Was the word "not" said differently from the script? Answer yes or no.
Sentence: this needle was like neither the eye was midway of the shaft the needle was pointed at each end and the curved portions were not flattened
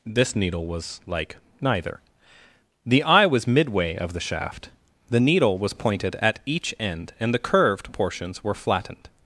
yes